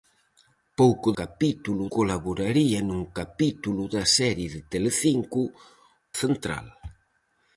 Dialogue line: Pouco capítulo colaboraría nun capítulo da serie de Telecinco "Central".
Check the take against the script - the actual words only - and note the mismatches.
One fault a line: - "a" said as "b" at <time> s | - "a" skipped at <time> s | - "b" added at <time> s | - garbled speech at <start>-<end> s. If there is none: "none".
none